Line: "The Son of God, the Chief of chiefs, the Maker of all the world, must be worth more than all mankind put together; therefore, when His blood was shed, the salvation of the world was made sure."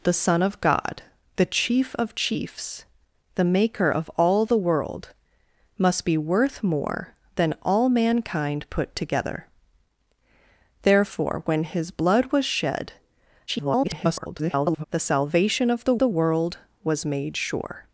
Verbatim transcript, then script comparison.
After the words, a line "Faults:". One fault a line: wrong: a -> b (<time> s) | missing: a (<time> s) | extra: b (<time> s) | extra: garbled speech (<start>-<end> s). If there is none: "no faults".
"The Son of God, the Chief of chiefs, the Maker of all the world, must be worth more than all mankind put together; therefore, when His blood was shed, [garbled] the salvation of the the world was made sure."
Faults:
extra: garbled speech (13.5-14.8 s)
extra: the (16.0 s)